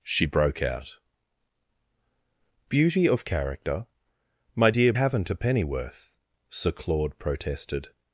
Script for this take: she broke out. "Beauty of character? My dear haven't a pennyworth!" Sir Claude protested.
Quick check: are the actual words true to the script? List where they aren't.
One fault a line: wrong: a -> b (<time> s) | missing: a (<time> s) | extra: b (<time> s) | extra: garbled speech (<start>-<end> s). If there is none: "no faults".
no faults